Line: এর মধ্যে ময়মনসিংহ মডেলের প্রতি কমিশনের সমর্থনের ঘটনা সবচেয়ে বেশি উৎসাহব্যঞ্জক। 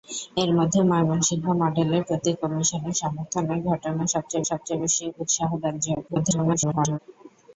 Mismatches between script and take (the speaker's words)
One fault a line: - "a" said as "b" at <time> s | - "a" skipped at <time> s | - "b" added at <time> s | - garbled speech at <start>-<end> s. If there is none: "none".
- "সবচেয়ে" added at 4.5 s
- garbled speech at 6.1-7.0 s